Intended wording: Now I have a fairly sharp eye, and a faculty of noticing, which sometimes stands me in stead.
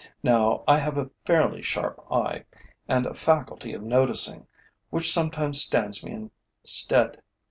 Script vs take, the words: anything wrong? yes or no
no